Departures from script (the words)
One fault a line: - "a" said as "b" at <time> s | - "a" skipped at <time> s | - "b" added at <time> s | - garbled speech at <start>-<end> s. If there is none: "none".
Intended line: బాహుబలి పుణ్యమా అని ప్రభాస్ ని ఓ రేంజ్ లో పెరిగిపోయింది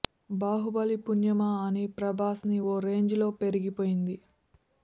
none